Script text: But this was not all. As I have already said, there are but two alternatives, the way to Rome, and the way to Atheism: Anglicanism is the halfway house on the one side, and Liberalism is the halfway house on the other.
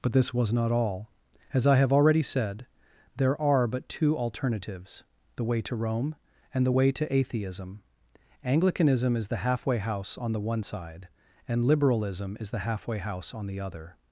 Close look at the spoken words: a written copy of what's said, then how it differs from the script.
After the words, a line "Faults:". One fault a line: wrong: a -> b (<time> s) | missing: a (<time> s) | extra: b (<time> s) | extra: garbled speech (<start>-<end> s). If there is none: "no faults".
But this was not all. As I have already said, there are but two alternatives, the way to Rome, and the way to Atheism: Anglicanism is the halfway house on the one side, and Liberalism is the halfway house on the other.
Faults:
no faults